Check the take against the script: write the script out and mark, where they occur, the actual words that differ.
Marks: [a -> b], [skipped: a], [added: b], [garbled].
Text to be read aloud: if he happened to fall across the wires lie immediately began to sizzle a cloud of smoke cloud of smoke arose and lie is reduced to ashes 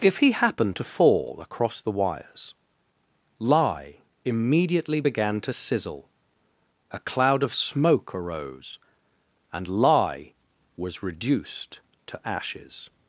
if he happened to fall across the wires lie immediately began to sizzle a cloud of smoke [skipped: cloud of smoke] arose and lie [is -> was] reduced to ashes